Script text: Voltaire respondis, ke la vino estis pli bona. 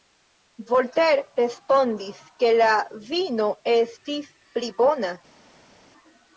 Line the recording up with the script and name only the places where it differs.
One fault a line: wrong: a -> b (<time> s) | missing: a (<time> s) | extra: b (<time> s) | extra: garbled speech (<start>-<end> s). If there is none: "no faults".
no faults